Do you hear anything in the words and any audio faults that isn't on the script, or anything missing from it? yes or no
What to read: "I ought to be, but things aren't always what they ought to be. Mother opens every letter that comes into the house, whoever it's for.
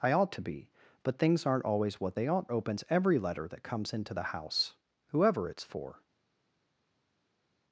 yes